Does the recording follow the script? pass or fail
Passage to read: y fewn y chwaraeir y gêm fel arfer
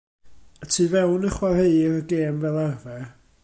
fail